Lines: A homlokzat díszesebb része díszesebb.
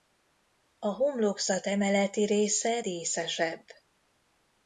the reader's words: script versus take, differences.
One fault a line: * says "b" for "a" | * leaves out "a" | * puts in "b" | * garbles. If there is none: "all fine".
* says "emeleti" for "díszesebb"